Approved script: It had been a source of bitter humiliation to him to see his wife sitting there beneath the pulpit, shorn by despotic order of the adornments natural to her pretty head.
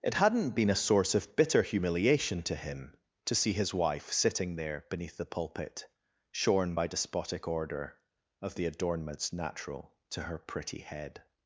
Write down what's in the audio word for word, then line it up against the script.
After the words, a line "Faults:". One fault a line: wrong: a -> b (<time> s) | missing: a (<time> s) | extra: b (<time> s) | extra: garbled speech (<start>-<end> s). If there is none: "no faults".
It hadn't been a source of bitter humiliation to him to see his wife sitting there beneath the pulpit, shorn by despotic order of the adornments natural to her pretty head.
Faults:
wrong: had -> hadn't (0.1 s)